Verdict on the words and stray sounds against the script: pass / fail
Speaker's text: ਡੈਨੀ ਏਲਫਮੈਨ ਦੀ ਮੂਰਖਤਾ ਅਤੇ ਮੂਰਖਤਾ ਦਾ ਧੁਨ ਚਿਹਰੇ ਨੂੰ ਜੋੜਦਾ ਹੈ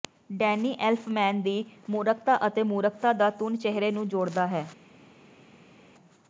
pass